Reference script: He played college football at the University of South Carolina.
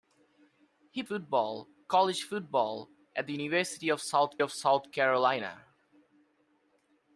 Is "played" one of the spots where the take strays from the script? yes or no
yes